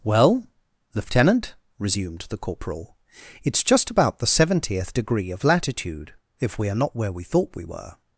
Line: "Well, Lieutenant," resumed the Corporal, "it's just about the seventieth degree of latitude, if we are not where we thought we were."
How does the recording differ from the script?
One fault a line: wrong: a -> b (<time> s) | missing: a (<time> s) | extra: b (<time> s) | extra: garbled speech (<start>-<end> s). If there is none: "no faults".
no faults